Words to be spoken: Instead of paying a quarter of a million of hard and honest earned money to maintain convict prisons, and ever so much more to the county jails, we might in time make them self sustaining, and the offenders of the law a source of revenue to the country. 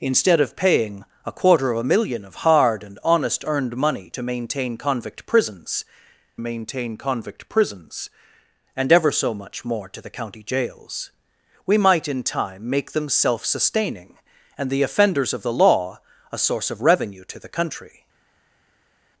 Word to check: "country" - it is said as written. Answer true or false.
true